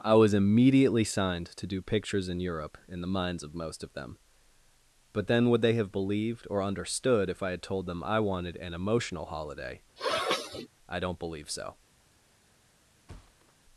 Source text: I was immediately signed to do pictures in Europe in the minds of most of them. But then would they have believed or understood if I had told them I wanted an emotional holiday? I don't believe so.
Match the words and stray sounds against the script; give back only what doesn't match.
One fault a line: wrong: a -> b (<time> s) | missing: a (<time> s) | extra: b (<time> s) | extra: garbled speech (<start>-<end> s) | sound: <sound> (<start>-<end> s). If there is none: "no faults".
sound: sniff (10.0-10.7 s)
sound: thud (13.1-13.5 s)